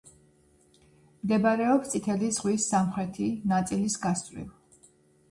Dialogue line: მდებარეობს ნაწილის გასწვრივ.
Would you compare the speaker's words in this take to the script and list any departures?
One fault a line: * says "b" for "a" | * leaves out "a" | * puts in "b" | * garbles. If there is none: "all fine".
* puts in "წითელი ზღვის სამხრეთი"